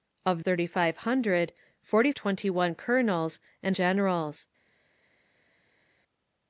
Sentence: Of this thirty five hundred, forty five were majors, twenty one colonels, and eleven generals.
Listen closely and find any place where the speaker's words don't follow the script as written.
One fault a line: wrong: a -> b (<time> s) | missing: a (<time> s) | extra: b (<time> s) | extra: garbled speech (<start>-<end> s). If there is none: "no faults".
missing: this (0.4 s)
missing: five were majors (2.1 s)
missing: eleven (3.8 s)